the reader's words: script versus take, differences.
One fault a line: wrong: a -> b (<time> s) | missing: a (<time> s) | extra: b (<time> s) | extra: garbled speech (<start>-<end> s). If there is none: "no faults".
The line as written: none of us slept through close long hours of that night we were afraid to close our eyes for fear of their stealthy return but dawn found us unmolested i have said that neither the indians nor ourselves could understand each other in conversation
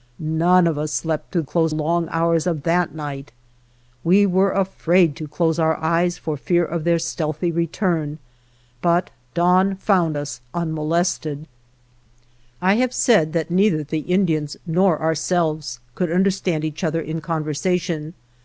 no faults